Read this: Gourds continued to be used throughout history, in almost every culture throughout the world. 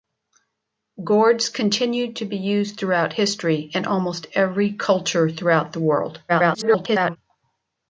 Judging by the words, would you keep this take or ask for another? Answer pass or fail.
fail